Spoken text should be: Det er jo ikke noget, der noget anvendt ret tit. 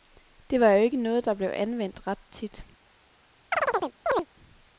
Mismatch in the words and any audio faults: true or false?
true